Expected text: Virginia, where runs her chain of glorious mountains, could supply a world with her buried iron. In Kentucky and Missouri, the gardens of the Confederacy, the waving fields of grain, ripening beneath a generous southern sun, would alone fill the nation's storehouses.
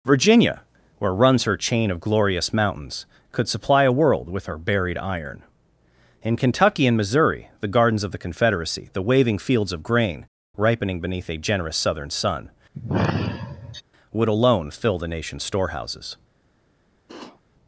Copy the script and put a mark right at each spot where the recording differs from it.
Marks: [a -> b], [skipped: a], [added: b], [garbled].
Virginia, where runs her chain of glorious mountains, could supply a world with her buried iron. In Kentucky and Missouri, the gardens of the Confederacy, the waving fields of grain, ripening beneath a generous southern sun, would alone fill the nation's storehouses.